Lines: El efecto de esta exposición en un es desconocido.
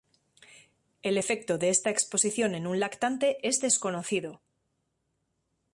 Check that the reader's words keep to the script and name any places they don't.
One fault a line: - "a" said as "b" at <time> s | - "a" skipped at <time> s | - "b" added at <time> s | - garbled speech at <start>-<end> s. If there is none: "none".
- "lactante" added at 2.8 s